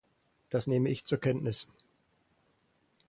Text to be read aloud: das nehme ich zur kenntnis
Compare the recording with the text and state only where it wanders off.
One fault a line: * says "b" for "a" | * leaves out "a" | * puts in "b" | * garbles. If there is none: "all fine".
all fine